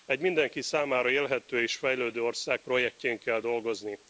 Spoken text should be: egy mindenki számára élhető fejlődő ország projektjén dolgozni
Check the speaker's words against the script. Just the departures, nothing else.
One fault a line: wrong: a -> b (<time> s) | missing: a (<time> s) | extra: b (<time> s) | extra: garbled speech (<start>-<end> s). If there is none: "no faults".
extra: és (1.6 s)
extra: kell (3.2 s)